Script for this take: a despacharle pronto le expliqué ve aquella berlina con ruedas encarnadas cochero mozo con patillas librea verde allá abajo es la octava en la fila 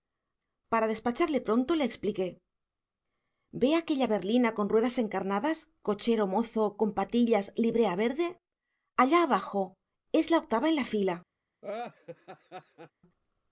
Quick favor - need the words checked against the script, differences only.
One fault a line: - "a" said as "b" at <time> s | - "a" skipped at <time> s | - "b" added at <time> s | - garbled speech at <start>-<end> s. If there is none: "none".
- "a" said as "para" at 0.7 s